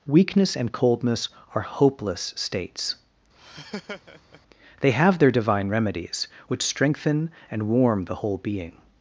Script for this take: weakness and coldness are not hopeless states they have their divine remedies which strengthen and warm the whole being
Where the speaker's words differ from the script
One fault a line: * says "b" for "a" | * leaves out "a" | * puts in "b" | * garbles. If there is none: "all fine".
* leaves out "not"